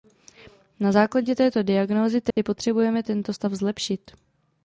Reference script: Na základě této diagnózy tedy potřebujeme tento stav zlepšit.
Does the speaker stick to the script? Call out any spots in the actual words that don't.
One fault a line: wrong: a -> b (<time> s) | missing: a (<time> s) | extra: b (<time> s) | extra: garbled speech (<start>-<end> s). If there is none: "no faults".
no faults